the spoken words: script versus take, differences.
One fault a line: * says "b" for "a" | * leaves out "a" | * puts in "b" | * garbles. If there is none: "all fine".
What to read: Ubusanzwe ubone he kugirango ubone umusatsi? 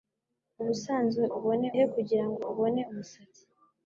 all fine